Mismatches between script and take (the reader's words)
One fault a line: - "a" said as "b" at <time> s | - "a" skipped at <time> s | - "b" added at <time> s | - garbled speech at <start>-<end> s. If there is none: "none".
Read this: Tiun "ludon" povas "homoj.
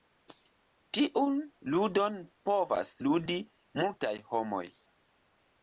- "ludi multaj" added at 3.1 s